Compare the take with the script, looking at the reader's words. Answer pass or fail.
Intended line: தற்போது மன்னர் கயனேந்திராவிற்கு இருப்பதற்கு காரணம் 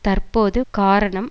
fail